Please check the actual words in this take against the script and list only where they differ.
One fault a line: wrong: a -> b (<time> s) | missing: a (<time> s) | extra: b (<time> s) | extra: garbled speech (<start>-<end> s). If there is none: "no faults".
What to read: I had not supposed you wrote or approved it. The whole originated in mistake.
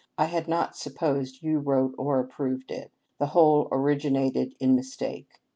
no faults